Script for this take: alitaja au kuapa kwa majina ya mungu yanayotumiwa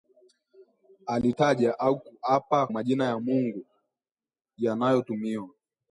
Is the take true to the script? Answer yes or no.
no